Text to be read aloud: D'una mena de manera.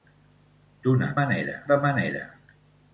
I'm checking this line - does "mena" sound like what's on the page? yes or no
no